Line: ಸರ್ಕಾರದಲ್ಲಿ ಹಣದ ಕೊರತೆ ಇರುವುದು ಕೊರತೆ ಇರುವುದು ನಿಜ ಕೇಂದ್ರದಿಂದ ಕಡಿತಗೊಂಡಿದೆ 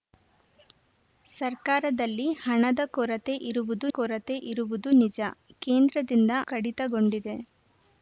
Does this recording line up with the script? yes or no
yes